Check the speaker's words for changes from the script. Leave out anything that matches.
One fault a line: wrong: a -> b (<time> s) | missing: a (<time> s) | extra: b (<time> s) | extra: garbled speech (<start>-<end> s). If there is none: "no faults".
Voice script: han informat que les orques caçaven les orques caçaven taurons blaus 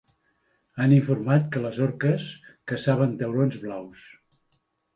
missing: les orques caçaven (3.1 s)